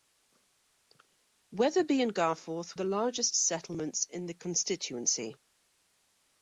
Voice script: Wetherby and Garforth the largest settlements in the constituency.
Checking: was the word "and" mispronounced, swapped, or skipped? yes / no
no